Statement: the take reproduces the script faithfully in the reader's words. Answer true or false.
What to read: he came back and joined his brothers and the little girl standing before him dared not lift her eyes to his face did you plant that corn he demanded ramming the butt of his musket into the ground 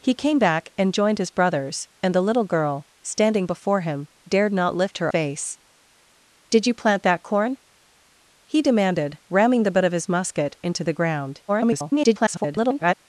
false